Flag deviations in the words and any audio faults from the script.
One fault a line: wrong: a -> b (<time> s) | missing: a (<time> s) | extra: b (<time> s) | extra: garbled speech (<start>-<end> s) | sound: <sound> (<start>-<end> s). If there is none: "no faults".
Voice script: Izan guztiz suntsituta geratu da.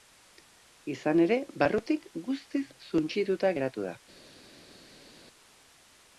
extra: ere barrutik (1.2 s)